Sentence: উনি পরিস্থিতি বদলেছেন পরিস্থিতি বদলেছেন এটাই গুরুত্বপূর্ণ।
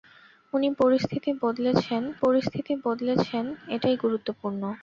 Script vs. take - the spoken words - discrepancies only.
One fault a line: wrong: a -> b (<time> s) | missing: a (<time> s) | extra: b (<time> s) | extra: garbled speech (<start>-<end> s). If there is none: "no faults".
no faults